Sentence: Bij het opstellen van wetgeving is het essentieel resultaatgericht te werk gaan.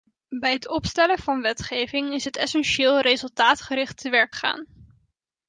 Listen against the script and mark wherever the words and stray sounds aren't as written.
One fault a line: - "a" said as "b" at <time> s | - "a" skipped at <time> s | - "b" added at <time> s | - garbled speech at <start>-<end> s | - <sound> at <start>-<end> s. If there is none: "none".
none